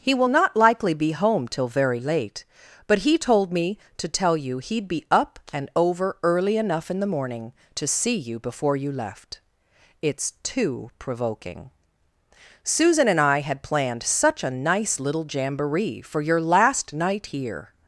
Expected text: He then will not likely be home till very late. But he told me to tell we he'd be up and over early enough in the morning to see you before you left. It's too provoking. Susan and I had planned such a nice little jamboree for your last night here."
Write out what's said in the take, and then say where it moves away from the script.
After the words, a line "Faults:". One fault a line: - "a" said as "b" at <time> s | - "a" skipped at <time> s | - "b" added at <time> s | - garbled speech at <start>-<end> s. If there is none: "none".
He will not likely be home till very late. But he told me to tell you he'd be up and over early enough in the morning to see you before you left. It's too provoking. Susan and I had planned such a nice little jamboree for your last night here."
Faults:
- "then" skipped at 0.1 s
- "we" said as "you" at 4.4 s